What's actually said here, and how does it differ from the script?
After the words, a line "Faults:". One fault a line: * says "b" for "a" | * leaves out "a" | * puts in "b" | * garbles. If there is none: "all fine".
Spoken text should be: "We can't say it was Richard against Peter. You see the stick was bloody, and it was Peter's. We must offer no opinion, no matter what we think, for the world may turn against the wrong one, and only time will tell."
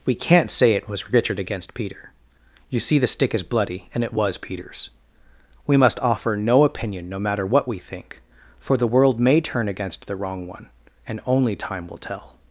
"We can't say it was Richard against Peter. You see the stick is bloody, and it was Peter's. We must offer no opinion, no matter what we think, for the world may turn against the wrong one, and only time will tell."
Faults:
* says "is" for "was"